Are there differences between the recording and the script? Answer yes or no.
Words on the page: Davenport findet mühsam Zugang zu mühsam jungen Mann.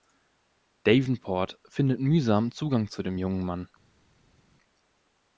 yes